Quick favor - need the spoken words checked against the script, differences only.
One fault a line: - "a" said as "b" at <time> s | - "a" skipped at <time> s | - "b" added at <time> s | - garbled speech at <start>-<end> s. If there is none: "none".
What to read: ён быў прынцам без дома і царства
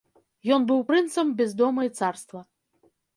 none